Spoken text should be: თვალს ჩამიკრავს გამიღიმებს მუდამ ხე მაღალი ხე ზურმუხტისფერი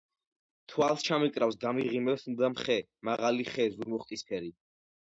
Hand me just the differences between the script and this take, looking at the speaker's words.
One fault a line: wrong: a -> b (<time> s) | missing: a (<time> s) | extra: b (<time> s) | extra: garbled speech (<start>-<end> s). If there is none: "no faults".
no faults